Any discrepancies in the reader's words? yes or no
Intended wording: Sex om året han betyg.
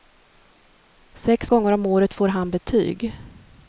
yes